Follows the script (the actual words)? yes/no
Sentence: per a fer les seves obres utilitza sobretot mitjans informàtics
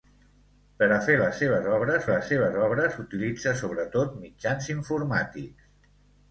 no